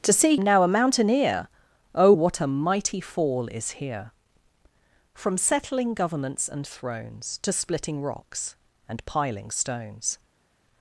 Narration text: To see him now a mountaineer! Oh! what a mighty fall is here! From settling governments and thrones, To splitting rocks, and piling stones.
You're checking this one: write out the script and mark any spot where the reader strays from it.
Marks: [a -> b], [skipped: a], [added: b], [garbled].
To see [skipped: him] now a mountaineer! Oh! what a mighty fall is here! From settling governments and thrones, To splitting rocks, and piling stones.